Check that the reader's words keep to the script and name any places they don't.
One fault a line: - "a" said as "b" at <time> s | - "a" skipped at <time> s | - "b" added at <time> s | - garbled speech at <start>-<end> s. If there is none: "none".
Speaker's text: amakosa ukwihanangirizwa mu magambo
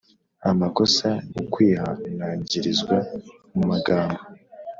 none